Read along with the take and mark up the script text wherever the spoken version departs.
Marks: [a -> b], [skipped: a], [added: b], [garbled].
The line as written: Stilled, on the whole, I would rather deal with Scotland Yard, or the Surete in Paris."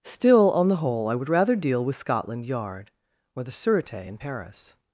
[Stilled, -> Still] on the whole, I would rather deal with Scotland Yard, or the Surete in Paris."